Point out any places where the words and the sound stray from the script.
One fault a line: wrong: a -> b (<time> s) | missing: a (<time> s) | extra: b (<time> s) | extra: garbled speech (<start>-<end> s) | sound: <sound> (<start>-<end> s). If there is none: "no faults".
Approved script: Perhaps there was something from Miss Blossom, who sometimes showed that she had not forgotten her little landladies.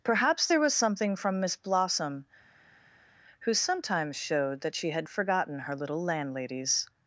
missing: not (5.1 s)